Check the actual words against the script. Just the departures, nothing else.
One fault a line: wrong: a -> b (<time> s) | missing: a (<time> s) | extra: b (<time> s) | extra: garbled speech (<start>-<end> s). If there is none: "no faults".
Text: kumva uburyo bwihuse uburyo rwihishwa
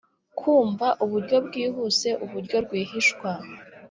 no faults